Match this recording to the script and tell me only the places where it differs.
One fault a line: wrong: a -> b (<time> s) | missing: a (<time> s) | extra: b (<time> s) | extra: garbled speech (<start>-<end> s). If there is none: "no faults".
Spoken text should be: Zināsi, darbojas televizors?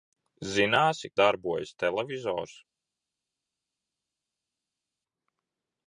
no faults